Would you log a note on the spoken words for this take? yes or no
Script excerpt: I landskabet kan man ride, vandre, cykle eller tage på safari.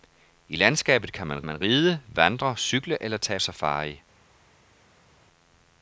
yes